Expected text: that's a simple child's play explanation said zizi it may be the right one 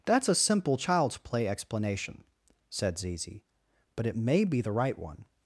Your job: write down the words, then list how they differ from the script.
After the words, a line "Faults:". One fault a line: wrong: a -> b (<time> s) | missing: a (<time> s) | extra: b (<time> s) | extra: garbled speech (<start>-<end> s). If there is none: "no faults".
that's a simple child's play explanation said zizi but it may be the right one
Faults:
extra: but (4.0 s)